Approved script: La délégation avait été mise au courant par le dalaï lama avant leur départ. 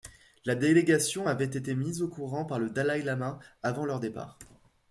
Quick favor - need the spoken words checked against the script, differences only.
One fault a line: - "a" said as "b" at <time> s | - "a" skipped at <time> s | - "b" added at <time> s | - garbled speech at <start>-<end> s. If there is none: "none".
none